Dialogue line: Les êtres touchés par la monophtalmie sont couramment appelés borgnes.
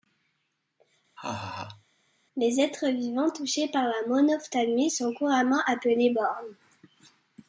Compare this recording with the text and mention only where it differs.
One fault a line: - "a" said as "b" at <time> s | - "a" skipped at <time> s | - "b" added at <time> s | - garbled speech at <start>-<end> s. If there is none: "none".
- "vivants" added at 2.9 s